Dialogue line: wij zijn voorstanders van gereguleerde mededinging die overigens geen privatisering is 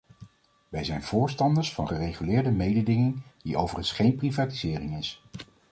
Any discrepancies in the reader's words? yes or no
no